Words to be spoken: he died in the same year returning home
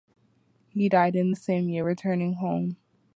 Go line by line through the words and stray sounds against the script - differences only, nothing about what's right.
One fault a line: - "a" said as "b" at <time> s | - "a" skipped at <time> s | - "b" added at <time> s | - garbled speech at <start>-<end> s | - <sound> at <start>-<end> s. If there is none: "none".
none